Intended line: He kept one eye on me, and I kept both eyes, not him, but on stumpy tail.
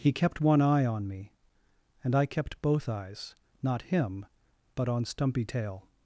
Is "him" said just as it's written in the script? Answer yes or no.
yes